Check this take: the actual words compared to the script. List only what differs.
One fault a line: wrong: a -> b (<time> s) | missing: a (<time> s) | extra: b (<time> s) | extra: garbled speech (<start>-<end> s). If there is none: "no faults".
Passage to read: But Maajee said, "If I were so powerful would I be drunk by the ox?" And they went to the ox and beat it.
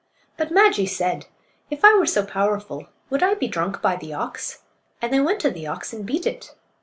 no faults